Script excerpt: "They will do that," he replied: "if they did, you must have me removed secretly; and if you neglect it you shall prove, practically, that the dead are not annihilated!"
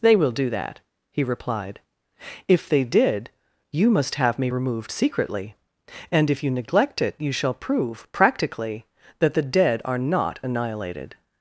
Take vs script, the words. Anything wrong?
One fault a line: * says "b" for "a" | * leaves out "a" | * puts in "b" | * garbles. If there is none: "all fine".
all fine